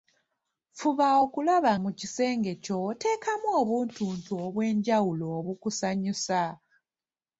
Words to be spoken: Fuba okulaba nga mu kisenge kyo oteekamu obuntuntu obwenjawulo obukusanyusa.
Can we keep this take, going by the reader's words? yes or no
no